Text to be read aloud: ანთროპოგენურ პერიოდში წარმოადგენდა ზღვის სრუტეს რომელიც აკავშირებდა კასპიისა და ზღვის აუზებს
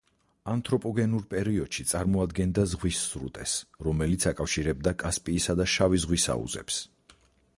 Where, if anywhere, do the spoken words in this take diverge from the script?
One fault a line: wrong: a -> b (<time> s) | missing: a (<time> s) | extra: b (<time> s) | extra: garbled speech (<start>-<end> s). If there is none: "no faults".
extra: შავი (5.8 s)